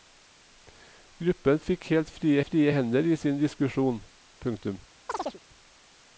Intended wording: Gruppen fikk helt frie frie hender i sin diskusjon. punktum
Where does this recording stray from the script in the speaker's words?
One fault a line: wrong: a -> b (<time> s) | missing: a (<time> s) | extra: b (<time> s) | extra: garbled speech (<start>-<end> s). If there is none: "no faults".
no faults